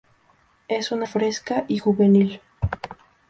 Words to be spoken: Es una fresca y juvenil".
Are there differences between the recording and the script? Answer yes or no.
no